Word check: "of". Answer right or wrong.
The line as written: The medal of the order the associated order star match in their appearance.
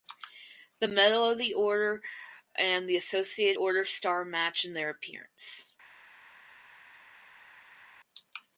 right